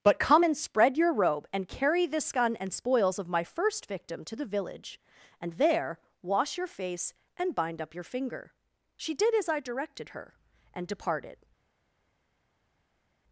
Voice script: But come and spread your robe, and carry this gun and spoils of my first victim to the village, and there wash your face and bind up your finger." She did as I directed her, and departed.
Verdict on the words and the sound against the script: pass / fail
pass